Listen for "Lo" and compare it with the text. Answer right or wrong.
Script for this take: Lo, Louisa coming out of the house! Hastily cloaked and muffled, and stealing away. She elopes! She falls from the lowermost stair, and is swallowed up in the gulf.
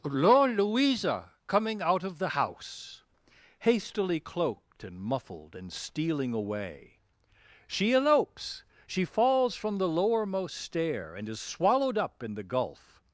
wrong